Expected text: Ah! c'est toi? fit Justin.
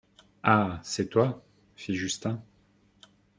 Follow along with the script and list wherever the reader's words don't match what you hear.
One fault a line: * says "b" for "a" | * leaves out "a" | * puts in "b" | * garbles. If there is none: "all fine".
all fine